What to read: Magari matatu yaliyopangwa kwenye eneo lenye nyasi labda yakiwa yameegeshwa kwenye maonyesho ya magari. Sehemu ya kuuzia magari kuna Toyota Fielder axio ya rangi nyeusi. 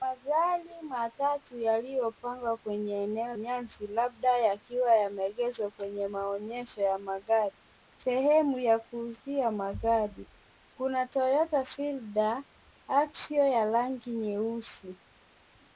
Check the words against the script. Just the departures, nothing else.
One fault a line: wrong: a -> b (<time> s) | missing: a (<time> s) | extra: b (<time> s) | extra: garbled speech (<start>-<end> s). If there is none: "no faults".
missing: lenye (3.3 s)